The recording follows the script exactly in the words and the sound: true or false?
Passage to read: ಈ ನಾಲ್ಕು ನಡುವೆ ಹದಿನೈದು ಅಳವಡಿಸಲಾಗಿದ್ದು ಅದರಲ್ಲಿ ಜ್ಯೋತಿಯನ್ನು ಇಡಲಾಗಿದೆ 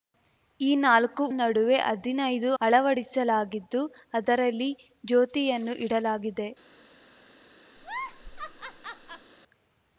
false